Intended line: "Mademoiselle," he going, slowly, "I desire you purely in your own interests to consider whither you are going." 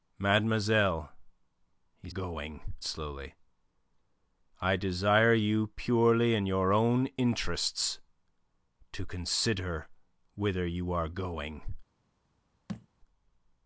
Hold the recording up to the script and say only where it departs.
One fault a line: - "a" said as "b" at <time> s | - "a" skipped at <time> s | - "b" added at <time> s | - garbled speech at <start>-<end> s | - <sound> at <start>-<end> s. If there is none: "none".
- thud at 12.7-12.9 s